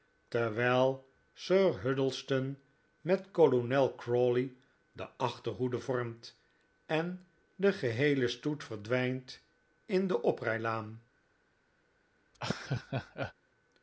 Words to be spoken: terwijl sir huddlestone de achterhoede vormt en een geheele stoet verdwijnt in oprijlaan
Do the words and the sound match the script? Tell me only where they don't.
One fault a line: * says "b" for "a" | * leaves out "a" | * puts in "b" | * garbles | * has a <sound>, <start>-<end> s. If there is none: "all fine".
* puts in "met kolonel crawley"
* says "de" for "een"
* puts in "de"
* has a laugh, 12.3-13.3 s